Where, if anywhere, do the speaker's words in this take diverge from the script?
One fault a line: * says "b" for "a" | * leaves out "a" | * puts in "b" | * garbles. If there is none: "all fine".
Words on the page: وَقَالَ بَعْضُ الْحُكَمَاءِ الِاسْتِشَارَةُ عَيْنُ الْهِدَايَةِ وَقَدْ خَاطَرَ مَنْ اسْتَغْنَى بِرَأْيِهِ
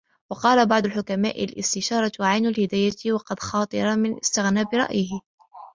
all fine